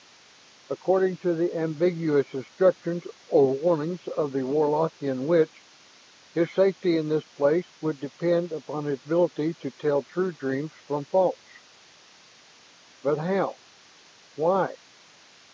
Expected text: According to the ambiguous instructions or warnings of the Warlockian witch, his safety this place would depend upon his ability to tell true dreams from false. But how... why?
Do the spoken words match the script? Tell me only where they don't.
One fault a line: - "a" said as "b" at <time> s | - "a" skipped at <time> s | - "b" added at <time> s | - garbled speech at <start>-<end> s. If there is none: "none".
- "in" added at 7.0 s